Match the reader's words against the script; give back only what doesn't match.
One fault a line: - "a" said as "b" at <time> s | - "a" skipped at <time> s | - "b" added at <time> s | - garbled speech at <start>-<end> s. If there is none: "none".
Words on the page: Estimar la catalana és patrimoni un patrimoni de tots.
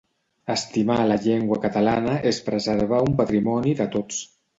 - "llengua" added at 1.2 s
- "patrimoni" said as "preservar" at 2.5 s